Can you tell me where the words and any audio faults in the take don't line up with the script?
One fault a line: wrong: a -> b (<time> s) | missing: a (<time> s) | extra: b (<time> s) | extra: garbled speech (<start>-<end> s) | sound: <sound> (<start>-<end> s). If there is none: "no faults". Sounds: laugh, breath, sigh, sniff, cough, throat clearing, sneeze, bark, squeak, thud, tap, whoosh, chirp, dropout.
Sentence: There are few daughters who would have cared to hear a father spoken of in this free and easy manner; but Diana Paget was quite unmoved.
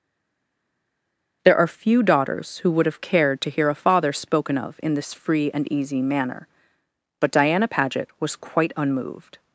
no faults